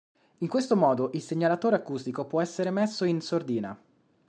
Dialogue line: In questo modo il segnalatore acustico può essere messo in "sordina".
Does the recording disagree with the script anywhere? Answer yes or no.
no